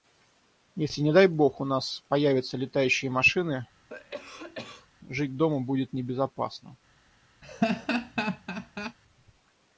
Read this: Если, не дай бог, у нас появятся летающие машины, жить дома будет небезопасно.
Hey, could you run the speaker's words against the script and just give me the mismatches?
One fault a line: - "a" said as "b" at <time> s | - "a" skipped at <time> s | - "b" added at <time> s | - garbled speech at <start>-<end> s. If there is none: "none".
none